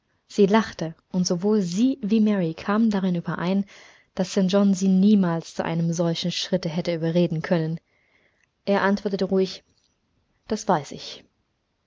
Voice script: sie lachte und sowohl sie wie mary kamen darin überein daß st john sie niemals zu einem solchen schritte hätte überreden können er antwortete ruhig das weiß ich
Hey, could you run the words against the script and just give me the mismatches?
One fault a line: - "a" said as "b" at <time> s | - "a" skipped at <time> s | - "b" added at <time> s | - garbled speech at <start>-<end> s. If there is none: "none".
none